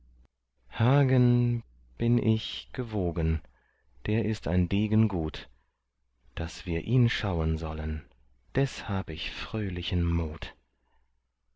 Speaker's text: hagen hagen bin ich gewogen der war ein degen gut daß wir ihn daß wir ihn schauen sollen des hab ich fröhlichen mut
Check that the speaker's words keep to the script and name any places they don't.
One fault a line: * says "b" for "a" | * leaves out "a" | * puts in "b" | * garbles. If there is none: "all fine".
* leaves out "hagen"
* says "ist" for "war"
* leaves out "daß wir ihn"